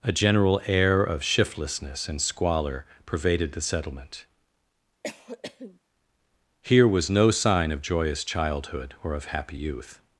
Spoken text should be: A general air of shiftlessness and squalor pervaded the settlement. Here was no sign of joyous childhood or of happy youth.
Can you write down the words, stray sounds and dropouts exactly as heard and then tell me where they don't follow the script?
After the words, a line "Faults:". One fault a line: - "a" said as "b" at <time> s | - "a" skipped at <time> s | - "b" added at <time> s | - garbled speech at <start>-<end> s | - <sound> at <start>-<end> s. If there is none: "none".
A general air of shiftlessness and squalor pervaded the settlement. Here was no sign of joyous childhood or of happy youth.
Faults:
- cough at 5.0-5.8 s